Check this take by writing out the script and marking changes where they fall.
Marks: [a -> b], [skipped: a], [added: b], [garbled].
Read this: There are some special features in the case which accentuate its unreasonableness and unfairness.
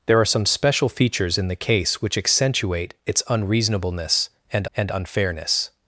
There are some special features in the case which accentuate its unreasonableness and [added: and] unfairness.